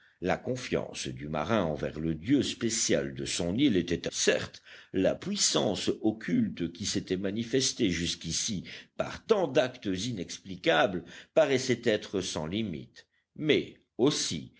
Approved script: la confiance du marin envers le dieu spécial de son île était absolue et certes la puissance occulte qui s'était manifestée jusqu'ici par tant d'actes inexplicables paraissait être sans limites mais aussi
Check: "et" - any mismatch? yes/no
yes